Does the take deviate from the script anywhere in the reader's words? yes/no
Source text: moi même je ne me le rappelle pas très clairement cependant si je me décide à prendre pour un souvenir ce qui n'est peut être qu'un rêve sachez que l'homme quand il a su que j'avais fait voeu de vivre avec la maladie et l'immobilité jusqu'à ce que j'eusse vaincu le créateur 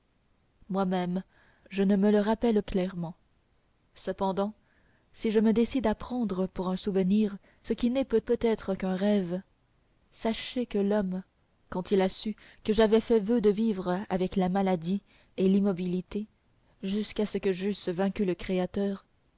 yes